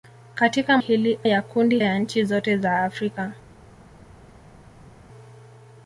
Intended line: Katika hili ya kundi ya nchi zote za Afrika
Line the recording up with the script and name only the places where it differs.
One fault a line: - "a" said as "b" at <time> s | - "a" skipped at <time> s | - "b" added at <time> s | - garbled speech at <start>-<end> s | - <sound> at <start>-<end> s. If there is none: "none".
none